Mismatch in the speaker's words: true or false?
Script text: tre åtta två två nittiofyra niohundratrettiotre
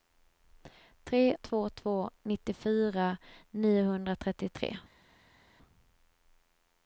true